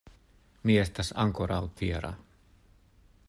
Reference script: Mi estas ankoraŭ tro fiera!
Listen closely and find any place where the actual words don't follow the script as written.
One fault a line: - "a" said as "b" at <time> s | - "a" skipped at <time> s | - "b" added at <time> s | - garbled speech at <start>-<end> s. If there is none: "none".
- "tro" skipped at 1.6 s